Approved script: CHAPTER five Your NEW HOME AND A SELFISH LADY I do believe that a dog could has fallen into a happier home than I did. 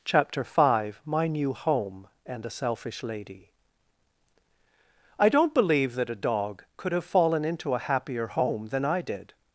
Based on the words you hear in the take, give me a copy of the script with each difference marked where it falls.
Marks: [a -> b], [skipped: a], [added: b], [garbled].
CHAPTER five [Your -> MY] NEW HOME AND A SELFISH LADY I [do -> don't] believe that a dog could [has -> have] fallen into a happier home than I did.